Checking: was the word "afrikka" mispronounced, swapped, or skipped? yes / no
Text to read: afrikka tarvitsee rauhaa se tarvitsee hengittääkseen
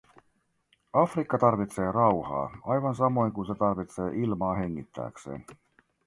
no